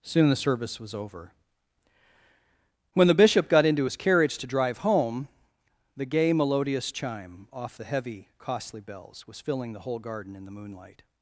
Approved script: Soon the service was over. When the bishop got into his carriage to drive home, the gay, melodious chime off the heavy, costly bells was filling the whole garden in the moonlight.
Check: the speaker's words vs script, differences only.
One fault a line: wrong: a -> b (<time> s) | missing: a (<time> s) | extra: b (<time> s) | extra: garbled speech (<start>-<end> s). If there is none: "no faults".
no faults